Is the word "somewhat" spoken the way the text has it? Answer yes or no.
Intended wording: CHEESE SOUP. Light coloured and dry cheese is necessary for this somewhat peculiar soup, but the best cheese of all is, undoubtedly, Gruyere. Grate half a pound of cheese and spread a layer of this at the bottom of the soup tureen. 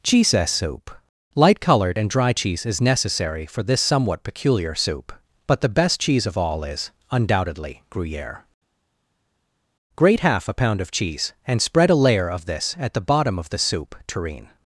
yes